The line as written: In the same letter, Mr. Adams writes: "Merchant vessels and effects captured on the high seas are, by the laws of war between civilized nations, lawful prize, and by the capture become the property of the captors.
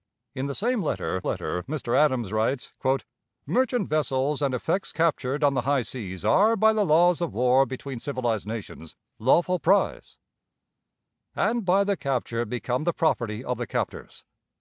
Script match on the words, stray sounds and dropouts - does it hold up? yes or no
no